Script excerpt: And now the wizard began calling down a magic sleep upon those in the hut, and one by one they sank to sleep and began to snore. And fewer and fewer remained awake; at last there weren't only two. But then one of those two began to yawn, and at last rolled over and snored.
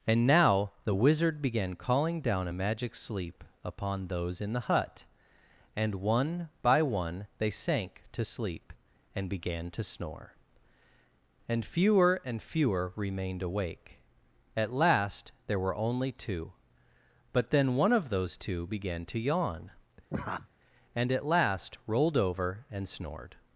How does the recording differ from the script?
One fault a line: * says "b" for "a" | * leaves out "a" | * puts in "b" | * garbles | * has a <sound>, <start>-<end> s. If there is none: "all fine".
* says "were" for "weren't"
* has a laugh, 20.1-20.5 s